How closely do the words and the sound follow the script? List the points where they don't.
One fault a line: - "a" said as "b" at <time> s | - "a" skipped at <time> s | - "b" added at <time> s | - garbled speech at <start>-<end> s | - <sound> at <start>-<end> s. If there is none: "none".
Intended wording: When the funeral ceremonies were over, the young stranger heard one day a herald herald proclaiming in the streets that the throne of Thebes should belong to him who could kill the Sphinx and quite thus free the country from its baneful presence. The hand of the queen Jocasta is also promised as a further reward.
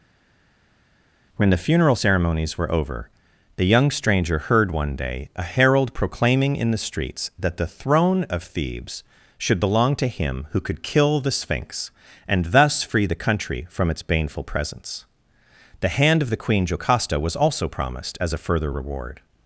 - "herald" skipped at 5.9 s
- "quite" skipped at 12.5 s
- "is" said as "was" at 17.2 s